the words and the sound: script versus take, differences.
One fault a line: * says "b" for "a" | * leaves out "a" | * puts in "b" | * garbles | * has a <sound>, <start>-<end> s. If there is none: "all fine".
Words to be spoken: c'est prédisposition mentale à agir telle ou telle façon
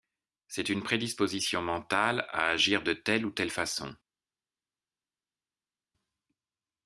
* puts in "une"
* puts in "de"